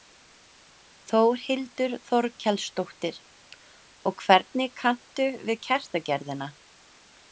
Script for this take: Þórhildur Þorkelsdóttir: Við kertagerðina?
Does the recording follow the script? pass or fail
fail